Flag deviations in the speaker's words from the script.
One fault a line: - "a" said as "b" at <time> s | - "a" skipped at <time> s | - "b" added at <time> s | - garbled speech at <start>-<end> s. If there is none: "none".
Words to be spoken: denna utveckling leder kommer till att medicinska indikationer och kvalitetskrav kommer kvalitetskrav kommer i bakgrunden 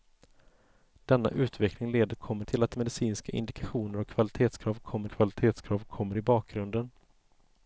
none